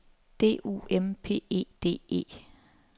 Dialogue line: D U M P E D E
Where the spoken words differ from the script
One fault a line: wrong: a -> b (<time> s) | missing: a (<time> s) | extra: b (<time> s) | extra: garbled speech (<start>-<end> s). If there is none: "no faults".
no faults